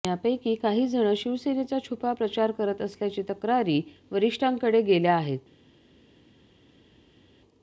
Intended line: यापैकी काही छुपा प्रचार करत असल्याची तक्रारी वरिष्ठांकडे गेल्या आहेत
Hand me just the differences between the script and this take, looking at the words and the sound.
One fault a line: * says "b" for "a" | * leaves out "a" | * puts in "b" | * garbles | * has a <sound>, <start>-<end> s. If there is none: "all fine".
* puts in "जण शिवसेनेचा"